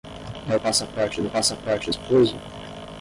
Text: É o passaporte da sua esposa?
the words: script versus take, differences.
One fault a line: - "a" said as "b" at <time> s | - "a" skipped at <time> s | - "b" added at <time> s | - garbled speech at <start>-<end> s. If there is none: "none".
- "sua" said as "passaporte" at 1.3 s